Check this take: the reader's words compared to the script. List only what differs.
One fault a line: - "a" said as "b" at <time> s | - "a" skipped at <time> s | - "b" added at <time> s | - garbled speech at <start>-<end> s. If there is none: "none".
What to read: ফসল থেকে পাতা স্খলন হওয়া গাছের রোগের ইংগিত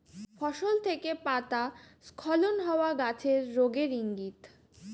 none